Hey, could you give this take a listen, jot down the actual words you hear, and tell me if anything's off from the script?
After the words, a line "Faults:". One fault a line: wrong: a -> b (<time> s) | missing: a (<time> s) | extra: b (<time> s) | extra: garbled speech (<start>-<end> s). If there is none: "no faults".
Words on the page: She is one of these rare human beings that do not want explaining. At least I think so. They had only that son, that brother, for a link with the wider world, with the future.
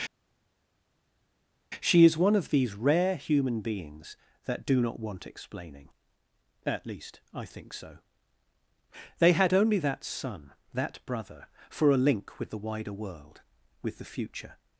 She is one of these rare human beings that do not want explaining. At least I think so. They had only that son, that brother, for a link with the wider world, with the future.
Faults:
no faults